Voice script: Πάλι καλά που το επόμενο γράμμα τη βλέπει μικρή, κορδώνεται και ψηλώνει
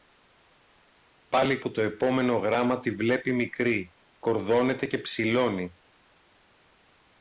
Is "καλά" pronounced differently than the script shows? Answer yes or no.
yes